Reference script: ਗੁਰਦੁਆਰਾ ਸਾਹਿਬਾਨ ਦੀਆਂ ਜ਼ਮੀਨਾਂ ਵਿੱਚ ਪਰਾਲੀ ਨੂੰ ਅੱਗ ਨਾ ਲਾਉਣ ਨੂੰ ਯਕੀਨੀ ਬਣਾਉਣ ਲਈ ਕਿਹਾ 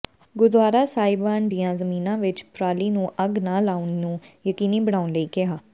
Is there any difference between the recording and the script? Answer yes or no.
no